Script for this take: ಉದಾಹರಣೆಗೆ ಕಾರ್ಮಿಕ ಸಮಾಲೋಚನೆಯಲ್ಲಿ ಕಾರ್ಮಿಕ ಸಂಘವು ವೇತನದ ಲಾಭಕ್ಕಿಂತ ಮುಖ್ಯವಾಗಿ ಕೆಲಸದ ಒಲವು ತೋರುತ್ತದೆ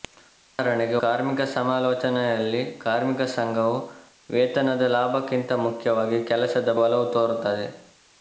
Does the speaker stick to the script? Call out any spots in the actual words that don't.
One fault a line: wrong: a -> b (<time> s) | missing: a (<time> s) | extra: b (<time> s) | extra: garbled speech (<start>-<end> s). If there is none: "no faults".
no faults